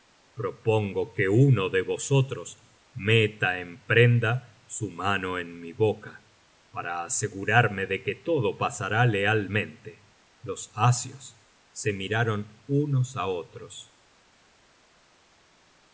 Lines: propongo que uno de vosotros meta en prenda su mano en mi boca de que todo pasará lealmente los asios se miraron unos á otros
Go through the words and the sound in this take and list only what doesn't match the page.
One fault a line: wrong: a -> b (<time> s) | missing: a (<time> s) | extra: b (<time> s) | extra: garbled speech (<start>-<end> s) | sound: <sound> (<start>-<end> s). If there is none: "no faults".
extra: para asegurarme (6.7 s)